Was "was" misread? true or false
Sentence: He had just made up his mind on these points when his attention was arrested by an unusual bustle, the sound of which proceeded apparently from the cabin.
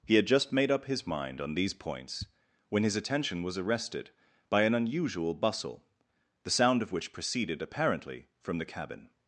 false